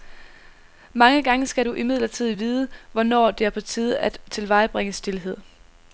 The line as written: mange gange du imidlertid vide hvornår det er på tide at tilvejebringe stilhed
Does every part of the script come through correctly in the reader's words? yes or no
no